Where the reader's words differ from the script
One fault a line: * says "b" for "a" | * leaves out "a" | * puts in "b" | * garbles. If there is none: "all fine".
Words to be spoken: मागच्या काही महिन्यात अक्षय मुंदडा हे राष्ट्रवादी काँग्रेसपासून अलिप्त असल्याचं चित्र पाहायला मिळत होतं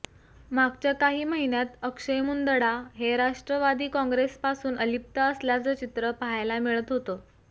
all fine